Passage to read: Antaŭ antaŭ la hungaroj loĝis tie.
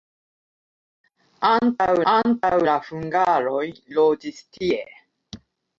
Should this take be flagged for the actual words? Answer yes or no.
no